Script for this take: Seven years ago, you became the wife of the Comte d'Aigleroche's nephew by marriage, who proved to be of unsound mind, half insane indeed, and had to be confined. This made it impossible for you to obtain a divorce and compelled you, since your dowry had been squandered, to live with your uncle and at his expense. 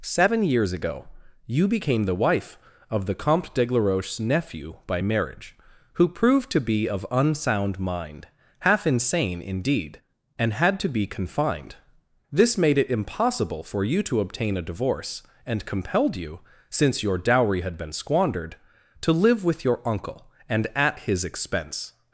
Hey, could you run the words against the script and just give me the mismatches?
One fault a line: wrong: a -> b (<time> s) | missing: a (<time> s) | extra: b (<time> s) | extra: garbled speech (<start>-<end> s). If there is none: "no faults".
no faults